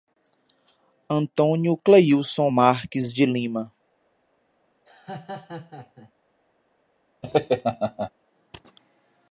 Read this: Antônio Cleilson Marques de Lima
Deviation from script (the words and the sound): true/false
true